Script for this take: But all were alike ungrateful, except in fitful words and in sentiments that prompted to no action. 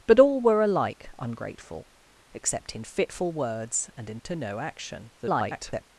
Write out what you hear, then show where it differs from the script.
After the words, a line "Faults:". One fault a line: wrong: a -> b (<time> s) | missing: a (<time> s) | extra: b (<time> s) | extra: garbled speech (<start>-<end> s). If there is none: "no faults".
But all were alike ungrateful, except in fitful words and in to no action. [garbled]
Faults:
missing: sentiments that prompted (4.2 s)
extra: garbled speech (5.2-5.8 s)